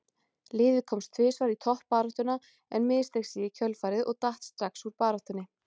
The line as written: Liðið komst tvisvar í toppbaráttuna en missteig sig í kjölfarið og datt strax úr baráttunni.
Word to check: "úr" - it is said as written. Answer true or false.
true